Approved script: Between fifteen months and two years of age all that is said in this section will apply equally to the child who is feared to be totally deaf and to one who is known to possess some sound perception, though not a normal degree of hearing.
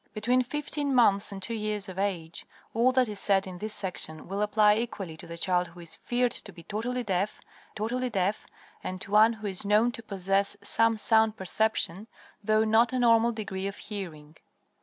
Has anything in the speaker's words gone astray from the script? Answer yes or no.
yes